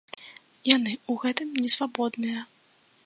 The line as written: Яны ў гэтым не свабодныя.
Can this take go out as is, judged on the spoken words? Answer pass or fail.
pass